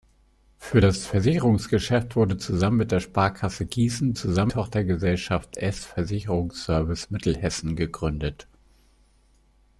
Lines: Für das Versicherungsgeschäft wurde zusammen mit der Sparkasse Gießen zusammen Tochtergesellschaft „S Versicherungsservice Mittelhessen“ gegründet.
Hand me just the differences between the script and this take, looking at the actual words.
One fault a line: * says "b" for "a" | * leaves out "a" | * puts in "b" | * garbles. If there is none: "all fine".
all fine